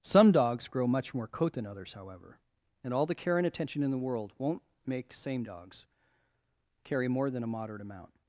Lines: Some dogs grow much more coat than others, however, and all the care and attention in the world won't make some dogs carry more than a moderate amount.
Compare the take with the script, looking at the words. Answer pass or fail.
fail